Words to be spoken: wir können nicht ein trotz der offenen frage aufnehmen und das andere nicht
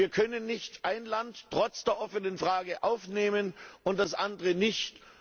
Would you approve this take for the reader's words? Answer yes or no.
no